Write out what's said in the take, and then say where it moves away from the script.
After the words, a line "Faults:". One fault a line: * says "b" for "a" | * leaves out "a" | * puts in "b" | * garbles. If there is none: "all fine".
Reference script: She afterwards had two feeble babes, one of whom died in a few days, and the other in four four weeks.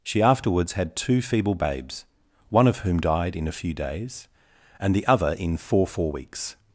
She afterwards had two feeble babes, one of whom died in a few days, and the other in four four weeks.
Faults:
all fine